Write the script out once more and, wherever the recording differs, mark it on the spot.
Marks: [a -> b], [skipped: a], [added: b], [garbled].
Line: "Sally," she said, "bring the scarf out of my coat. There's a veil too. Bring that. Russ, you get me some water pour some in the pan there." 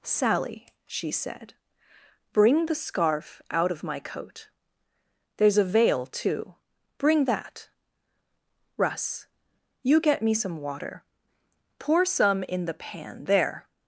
"Sally," she said, "bring the scarf out of my coat. There's a veil too. Bring that. Russ, you get me some water pour some in the pan there."